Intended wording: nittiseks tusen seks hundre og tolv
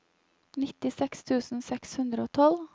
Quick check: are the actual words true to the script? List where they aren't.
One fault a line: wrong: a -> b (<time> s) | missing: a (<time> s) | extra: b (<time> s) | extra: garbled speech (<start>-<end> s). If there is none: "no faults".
no faults